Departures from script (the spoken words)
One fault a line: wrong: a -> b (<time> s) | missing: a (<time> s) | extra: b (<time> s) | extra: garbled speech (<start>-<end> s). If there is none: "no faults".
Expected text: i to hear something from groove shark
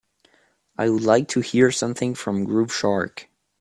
extra: would like (0.9 s)